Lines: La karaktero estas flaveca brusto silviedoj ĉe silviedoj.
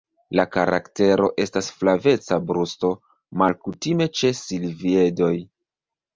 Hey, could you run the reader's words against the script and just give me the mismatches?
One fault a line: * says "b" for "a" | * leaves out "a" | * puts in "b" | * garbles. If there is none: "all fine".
* says "malkutime" for "silviedoj"